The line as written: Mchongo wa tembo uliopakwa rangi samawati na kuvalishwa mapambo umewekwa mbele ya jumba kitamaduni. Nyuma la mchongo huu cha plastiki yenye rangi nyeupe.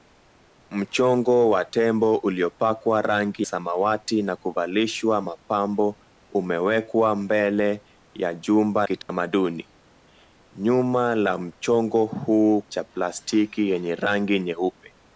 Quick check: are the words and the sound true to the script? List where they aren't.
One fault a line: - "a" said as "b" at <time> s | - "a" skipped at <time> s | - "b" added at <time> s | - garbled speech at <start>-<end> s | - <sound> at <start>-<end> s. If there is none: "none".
- dropout at 9.0-9.1 s